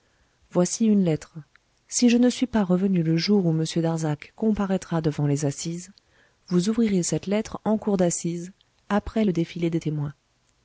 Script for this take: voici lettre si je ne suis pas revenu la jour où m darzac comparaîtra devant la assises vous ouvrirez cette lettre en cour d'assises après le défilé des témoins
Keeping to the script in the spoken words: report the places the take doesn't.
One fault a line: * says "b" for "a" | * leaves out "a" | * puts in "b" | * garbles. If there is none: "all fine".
* puts in "une"
* says "le" for "la"
* says "les" for "la"